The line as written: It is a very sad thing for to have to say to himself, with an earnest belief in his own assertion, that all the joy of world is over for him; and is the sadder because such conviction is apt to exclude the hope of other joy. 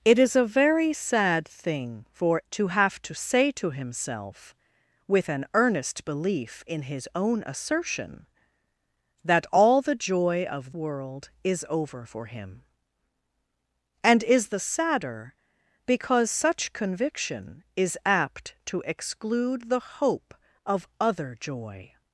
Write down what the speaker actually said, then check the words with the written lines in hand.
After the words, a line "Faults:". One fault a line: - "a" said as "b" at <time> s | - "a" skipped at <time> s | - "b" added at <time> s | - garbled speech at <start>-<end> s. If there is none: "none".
It is a very sad thing for to have to say to himself, with an earnest belief in his own assertion, that all the joy of world is over for him; and is the sadder because such conviction is apt to exclude the hope of other joy.
Faults:
none